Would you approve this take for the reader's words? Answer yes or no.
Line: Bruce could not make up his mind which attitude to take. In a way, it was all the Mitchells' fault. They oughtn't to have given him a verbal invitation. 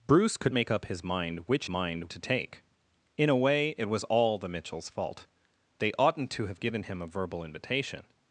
no